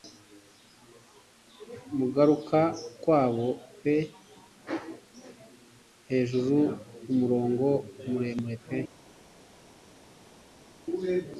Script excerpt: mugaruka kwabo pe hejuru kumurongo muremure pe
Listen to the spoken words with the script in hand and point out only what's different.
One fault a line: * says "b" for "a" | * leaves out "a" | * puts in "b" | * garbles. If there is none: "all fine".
all fine